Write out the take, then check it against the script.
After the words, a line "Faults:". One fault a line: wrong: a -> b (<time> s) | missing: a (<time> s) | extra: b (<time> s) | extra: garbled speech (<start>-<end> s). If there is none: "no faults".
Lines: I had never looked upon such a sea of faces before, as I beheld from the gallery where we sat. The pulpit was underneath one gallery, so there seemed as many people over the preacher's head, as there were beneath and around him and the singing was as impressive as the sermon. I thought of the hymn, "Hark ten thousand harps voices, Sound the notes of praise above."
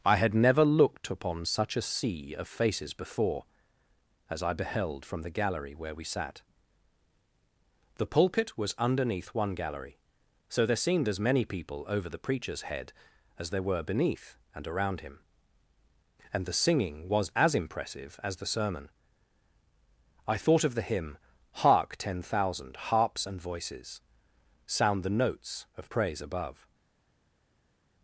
I had never looked upon such a sea of faces before, as I beheld from the gallery where we sat. The pulpit was underneath one gallery, so there seemed as many people over the preacher's head, as there were beneath and around him and the singing was as impressive as the sermon. I thought of the hymn, "Hark ten thousand harps and voices, Sound the notes of praise above."
Faults:
extra: and (23.2 s)